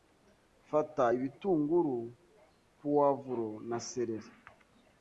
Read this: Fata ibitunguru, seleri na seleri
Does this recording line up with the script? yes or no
no